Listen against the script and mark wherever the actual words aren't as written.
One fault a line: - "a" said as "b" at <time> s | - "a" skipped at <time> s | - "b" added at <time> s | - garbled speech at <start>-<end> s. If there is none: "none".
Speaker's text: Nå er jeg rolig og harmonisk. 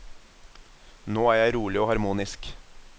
none